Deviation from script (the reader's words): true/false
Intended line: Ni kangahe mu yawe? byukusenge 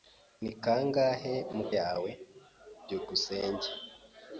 false